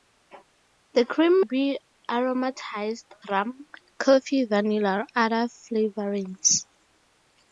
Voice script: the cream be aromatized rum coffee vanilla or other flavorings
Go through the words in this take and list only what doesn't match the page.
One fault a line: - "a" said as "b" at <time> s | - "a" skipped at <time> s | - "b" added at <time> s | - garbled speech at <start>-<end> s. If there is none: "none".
none